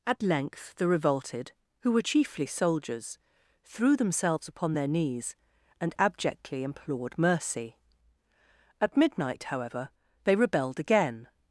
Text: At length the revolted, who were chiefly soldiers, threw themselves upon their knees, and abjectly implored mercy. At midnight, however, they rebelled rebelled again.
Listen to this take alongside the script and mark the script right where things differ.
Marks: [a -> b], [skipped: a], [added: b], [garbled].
At length the revolted, who were chiefly soldiers, threw themselves upon their knees, and abjectly implored mercy. At midnight, however, they rebelled [skipped: rebelled] again.